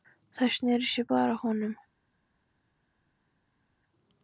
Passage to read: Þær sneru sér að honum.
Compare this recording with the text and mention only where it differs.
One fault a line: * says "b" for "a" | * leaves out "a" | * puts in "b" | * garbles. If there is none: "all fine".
* puts in "báðar"